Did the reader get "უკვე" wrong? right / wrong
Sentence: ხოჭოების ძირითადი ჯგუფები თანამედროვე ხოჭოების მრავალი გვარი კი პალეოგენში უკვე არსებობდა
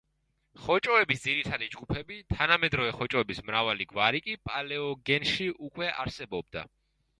right